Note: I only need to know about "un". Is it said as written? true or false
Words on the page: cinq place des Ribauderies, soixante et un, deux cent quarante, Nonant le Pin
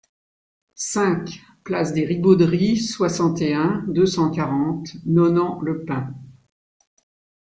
true